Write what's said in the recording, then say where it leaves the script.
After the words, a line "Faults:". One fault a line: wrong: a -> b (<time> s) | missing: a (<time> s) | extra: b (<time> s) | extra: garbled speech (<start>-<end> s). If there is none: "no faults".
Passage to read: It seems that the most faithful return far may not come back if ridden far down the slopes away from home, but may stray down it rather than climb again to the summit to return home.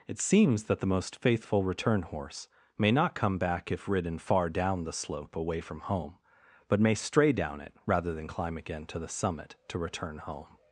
It seems that the most faithful return horse may not come back if ridden far down the slope away from home, but may stray down it rather than climb again to the summit to return home.
Faults:
wrong: far -> horse (2.0 s)
wrong: slopes -> slope (4.9 s)